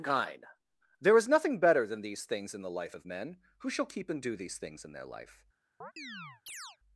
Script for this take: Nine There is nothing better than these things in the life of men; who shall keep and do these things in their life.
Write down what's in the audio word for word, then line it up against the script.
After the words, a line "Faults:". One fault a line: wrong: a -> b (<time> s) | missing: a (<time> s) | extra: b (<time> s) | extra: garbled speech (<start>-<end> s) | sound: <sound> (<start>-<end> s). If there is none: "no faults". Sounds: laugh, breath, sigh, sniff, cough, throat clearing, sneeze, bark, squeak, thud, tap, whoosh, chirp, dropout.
Kind There is nothing better than these things in the life of men; who shall keep and do these things in their life.
Faults:
wrong: Nine -> Kind (0.0 s)
sound: chirp (5.8-6.8 s)